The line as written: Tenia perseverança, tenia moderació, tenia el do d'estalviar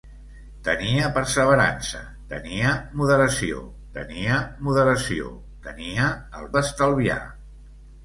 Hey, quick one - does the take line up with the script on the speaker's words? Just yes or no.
no